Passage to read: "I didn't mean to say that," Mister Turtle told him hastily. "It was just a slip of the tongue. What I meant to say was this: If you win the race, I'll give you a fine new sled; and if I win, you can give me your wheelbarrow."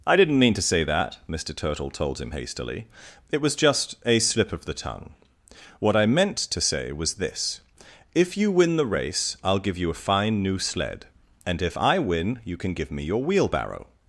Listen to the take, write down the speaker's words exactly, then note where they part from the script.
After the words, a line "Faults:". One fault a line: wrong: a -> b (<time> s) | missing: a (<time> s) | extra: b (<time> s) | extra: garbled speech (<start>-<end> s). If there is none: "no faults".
"I didn't mean to say that," Mister Turtle told him hastily. "It was just a slip of the tongue. What I meant to say was this: If you win the race, I'll give you a fine new sled; and if I win, you can give me your wheelbarrow."
Faults:
no faults